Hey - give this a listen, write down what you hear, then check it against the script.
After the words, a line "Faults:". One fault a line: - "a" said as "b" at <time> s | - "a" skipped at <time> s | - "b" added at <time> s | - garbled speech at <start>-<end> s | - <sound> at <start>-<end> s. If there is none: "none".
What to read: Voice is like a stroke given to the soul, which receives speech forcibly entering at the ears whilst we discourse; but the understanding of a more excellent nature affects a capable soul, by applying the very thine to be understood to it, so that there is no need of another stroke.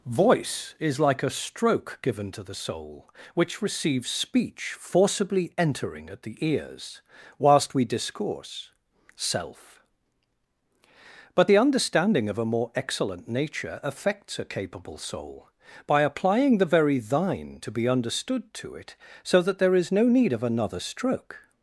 Voice is like a stroke given to the soul, which receives speech forcibly entering at the ears whilst we discourse; self but the understanding of a more excellent nature affects a capable soul, by applying the very thine to be understood to it, so that there is no need of another stroke.
Faults:
- "self" added at 9.2 s